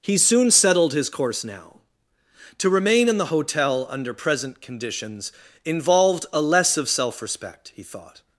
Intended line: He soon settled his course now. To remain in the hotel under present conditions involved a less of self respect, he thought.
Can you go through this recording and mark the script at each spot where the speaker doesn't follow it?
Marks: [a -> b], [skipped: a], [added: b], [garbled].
He soon settled his course now. To remain in the hotel under present conditions involved a less of self respect, he thought.